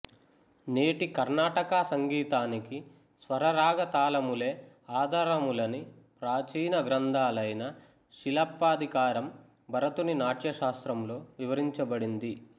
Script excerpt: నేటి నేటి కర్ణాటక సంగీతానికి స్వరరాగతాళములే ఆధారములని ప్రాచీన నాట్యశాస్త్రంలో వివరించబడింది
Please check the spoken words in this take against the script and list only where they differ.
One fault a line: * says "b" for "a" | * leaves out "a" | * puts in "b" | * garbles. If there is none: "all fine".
* leaves out "నేటి"
* puts in "గ్రంథాలైన శిలప్పాధికారం భరతుని"